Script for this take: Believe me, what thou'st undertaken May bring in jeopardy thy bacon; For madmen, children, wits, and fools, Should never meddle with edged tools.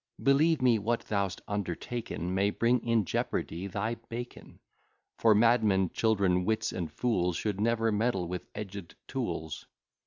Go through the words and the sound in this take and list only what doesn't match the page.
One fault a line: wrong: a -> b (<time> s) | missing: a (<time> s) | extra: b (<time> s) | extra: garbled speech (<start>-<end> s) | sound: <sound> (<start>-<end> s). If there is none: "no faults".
no faults